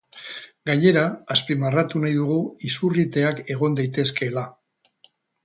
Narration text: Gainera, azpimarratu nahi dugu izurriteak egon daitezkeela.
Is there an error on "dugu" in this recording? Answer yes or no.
no